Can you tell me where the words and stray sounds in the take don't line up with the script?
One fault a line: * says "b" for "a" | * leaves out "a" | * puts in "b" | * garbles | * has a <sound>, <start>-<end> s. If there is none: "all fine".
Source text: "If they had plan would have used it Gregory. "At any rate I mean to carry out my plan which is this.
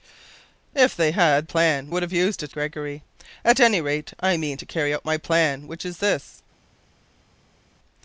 all fine